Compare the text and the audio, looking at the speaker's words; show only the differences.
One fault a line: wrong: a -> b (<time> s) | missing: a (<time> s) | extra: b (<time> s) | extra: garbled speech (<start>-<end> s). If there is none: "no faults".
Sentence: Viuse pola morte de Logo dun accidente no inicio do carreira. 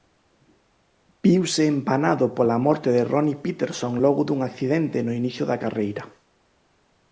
extra: empanado (1.7 s)
extra: Ronnie Peterson (3.1 s)
wrong: do -> da (5.5 s)